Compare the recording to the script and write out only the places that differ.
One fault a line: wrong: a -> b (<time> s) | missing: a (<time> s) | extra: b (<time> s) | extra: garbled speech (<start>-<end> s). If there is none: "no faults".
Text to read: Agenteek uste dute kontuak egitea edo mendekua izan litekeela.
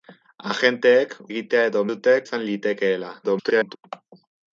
missing: uste dute kontuak (1.1 s)
wrong: mendekua -> dute (1.9 s)
extra: garbled speech (3.2-3.8 s)